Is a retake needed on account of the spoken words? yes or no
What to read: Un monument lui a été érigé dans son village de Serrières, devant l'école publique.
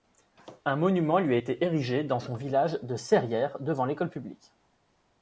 no